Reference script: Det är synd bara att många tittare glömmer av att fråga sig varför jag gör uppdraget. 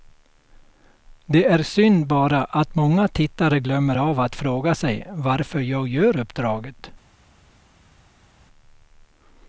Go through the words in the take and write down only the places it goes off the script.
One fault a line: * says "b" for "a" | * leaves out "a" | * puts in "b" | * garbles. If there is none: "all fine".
all fine